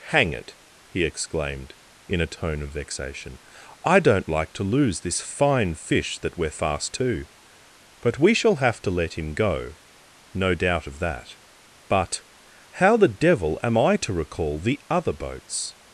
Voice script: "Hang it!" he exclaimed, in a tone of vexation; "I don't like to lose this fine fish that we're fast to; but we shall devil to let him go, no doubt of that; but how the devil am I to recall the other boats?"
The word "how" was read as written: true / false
true